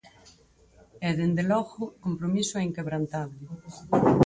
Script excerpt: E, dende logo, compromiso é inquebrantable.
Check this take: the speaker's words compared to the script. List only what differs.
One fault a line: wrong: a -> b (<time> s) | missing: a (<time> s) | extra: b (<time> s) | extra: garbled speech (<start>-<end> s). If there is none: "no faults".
no faults